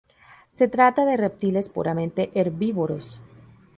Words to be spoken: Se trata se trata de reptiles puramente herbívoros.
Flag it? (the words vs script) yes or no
yes